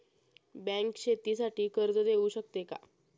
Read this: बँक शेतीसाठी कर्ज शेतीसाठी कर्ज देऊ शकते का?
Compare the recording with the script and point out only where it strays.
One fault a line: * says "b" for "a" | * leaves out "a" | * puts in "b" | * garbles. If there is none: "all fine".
* leaves out "शेतीसाठी कर्ज"